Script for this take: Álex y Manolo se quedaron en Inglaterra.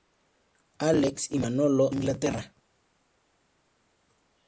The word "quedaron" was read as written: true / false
false